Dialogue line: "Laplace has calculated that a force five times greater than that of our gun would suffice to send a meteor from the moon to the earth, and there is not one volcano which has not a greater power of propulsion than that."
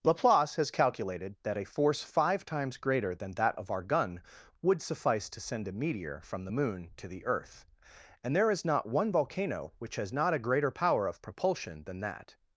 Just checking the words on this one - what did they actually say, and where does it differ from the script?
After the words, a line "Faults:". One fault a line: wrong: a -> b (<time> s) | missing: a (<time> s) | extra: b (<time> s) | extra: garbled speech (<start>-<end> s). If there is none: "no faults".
"Laplace has calculated that a force five times greater than that of our gun would suffice to send a meteor from the moon to the earth, and there is not one volcano which has not a greater power of propulsion than that."
Faults:
no faults